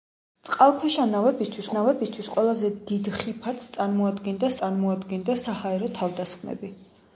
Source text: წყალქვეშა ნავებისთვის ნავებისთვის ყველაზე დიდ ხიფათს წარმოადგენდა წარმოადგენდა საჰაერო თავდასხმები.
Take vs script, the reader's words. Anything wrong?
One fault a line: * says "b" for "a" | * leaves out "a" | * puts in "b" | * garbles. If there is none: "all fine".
all fine